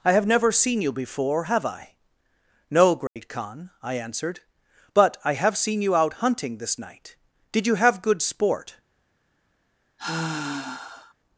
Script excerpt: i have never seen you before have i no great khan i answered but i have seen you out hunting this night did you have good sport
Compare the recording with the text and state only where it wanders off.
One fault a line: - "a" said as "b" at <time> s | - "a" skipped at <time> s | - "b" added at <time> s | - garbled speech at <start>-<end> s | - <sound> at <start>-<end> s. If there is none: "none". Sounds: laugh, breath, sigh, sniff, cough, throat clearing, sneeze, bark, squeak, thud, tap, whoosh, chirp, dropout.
- dropout at 3.1-3.2 s
- sigh at 10.0-11.1 s